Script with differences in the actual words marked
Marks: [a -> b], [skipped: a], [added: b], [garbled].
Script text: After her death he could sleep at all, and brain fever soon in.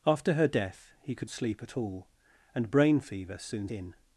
After her death he could sleep at all, and brain fever soon in.